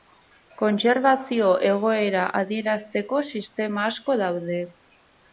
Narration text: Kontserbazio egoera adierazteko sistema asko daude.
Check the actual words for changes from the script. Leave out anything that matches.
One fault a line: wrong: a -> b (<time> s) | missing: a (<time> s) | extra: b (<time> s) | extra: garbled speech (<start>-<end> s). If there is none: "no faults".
no faults